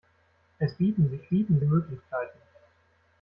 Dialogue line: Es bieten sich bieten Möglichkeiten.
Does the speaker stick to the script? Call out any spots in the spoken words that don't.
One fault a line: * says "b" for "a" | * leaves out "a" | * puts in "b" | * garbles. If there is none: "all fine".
all fine